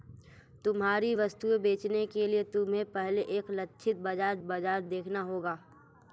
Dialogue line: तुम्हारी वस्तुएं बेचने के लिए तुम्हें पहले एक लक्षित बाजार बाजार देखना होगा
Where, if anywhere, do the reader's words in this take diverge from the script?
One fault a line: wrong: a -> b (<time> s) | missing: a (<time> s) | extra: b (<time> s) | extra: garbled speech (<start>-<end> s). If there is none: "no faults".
no faults